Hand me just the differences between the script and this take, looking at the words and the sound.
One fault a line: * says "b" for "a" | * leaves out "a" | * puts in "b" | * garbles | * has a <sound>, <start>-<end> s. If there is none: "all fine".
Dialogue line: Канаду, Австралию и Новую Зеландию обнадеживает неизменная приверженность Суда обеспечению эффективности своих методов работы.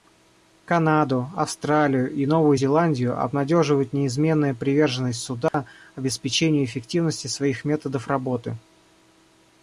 * has a dropout, 5.5-5.5 s